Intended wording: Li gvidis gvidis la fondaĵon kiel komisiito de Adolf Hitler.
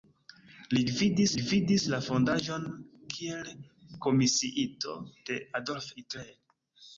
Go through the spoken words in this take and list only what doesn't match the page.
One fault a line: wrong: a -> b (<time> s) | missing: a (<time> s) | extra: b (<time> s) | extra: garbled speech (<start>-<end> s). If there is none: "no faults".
no faults